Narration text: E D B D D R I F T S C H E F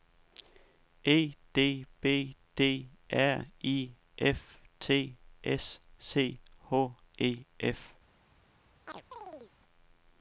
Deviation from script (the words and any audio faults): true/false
true